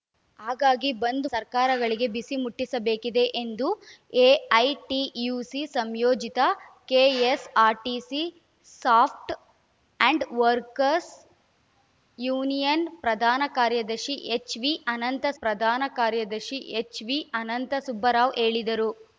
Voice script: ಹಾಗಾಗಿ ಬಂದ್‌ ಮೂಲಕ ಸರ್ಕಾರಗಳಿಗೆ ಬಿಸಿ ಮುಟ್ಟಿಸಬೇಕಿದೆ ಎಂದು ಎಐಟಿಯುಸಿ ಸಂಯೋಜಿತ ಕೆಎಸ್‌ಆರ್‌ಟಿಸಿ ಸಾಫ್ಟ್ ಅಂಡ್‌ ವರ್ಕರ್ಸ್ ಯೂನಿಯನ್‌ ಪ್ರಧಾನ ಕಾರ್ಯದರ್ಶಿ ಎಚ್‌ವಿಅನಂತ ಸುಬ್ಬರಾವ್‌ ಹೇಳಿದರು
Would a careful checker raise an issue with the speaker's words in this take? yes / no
yes